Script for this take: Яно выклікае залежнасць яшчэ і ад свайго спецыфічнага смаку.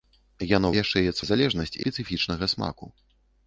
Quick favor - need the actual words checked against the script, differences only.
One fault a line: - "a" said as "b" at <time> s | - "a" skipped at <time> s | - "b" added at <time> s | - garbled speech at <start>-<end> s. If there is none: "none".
- "выклікае залежнасць" skipped at 0.7 s
- "свайго" said as "залежнасць" at 1.3 s